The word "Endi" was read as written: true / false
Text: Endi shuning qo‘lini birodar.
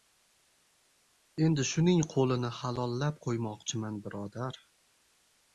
true